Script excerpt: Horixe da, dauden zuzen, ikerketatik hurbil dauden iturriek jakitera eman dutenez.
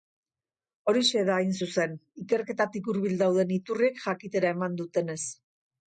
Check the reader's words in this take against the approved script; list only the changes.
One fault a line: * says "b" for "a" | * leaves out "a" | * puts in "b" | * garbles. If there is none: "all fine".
* says "hain" for "dauden"